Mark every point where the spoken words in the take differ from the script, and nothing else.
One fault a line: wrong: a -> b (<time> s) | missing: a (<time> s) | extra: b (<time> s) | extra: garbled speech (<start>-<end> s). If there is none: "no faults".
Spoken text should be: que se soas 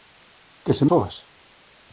no faults